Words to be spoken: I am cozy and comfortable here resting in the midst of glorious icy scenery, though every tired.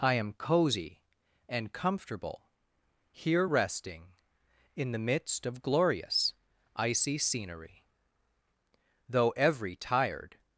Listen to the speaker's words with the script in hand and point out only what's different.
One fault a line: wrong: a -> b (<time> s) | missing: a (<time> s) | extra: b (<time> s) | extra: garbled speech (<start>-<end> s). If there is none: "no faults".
no faults